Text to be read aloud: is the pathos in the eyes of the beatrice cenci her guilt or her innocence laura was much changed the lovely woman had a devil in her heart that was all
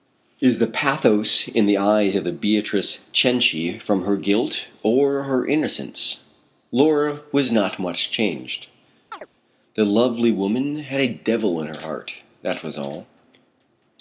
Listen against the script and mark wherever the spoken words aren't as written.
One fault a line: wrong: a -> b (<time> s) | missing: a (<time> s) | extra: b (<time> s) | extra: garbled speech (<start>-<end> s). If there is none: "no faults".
extra: from (3.8 s)
extra: not (7.5 s)